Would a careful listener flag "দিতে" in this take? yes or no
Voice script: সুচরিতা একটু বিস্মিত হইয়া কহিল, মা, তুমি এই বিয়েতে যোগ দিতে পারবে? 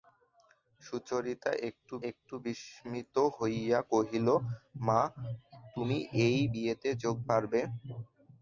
yes